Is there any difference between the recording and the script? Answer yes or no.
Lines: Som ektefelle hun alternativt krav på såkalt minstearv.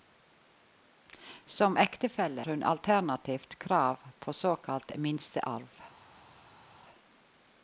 no